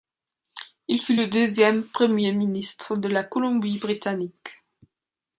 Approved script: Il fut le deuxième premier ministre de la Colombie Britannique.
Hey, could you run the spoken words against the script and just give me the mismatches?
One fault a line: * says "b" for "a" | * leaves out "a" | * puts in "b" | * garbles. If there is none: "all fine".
all fine